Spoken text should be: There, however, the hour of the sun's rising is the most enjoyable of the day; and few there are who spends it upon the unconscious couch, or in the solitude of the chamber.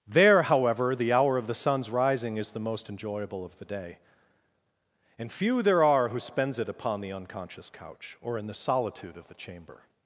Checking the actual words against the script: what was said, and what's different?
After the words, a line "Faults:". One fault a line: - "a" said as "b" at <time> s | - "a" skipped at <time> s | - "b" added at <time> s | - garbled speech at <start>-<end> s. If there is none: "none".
There, however, the hour of the sun's rising is the most enjoyable of the day; and few there are who spends it upon the unconscious couch, or in the solitude of the chamber.
Faults:
none